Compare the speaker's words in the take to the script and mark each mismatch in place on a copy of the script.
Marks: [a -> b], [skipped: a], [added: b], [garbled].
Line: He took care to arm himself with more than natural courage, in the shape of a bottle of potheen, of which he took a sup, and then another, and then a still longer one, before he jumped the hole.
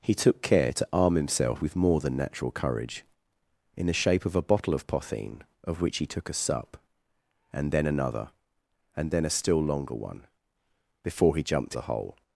He took care to arm himself with more than natural courage, in the shape of a bottle of potheen, of which he took a sup, and then another, and then a still longer one, before he jumped the hole.